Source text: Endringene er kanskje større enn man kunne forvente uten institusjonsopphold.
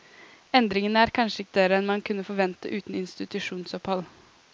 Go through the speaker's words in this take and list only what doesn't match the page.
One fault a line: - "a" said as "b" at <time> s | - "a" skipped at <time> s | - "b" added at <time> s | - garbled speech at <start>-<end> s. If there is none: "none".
none